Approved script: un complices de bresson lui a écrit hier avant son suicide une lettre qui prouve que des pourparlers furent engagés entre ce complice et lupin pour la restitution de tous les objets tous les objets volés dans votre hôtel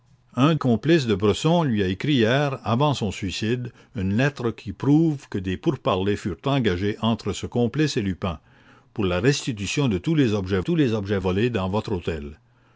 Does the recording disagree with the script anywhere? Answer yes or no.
no